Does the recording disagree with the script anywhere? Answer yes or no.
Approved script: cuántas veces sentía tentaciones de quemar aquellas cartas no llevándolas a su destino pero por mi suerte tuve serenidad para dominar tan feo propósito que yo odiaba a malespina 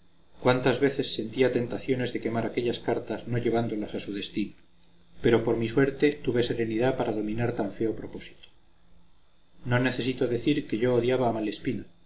yes